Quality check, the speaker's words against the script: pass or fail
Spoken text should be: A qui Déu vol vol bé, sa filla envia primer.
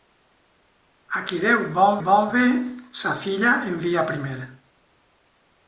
pass